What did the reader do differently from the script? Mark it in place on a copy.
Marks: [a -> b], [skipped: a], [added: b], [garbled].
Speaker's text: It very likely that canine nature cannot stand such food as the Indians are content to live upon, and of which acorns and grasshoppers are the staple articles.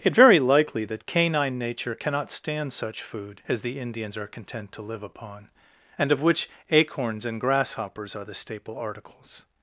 It very likely that canine nature cannot stand such food as the Indians are content to live upon, and of which acorns and grasshoppers are the staple articles.